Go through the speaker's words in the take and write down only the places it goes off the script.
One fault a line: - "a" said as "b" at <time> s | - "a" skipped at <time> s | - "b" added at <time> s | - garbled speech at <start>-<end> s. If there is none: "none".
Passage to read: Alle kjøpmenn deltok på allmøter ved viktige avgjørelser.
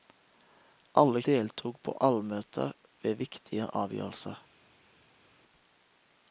- "kjøpmenn" skipped at 1.2 s